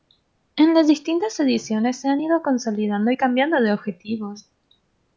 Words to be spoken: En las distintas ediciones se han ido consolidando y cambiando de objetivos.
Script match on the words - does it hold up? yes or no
yes